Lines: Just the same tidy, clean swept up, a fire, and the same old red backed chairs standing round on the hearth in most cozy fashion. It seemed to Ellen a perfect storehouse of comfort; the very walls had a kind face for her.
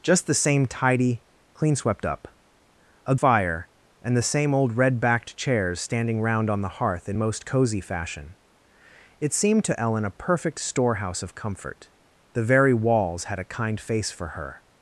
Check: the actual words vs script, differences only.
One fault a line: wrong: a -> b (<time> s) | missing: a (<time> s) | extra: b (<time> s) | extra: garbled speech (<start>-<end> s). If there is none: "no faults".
no faults